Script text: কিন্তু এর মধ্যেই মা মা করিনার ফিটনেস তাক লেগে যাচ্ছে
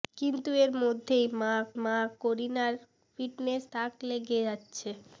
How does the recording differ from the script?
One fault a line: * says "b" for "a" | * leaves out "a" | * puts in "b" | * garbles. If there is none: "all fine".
all fine